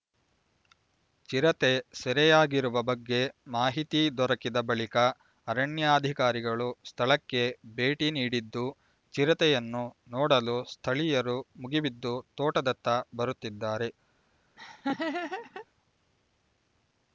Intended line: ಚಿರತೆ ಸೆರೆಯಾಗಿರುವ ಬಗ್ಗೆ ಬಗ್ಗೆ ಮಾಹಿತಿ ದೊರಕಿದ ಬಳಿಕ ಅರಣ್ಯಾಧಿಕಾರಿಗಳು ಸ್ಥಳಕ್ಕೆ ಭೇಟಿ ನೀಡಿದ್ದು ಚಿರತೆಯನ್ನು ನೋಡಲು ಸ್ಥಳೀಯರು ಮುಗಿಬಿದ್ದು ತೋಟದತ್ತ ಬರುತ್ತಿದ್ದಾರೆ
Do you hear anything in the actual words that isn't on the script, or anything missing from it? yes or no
yes